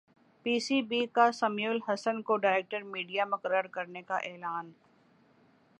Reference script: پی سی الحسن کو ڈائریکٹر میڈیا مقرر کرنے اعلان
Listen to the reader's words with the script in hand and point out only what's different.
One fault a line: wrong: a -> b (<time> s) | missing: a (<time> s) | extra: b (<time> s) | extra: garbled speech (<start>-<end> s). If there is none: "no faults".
extra: بی کا سمیع (0.8 s)
extra: کا (4.0 s)